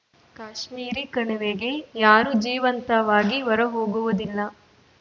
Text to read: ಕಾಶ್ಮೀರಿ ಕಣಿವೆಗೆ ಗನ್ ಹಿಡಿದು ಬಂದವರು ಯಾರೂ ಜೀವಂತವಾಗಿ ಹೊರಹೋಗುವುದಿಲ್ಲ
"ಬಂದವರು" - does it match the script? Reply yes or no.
no